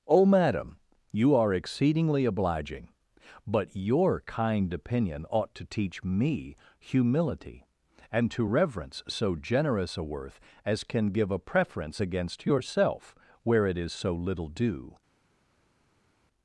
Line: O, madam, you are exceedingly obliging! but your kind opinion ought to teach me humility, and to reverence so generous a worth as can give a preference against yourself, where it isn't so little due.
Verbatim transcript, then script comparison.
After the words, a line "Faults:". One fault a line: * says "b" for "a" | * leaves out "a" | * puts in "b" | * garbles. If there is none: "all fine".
O, madam, you are exceedingly obliging! but your kind opinion ought to teach me humility, and to reverence so generous a worth as can give a preference against yourself, where it is so little due.
Faults:
* says "is" for "isn't"